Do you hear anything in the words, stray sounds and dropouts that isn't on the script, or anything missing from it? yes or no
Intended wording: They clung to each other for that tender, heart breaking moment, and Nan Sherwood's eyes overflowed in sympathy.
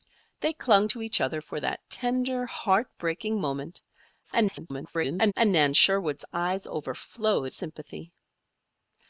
yes